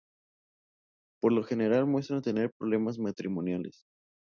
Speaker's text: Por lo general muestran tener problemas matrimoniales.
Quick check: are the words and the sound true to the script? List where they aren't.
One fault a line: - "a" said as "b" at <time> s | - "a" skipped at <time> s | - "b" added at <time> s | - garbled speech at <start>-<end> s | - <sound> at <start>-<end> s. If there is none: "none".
none